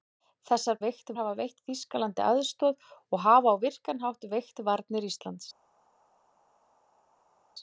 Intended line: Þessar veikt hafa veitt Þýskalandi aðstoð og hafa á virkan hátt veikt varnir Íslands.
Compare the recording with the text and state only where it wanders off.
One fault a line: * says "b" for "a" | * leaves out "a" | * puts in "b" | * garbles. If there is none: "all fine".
all fine